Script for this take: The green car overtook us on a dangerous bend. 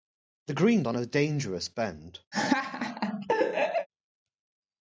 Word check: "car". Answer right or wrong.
wrong